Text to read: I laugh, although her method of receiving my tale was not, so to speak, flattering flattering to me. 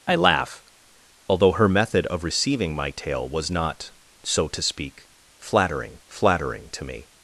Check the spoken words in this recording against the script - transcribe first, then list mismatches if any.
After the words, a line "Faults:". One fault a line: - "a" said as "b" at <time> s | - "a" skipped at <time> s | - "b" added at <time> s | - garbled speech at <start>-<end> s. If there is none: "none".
I laugh, although her method of receiving my tale was not, so to speak, flattering flattering to me.
Faults:
none